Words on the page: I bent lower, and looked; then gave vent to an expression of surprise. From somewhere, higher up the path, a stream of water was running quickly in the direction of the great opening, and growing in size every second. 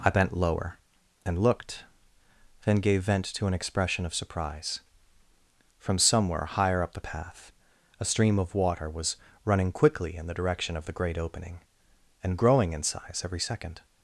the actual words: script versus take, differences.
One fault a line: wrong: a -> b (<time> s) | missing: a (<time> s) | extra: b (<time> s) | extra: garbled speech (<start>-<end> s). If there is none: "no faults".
no faults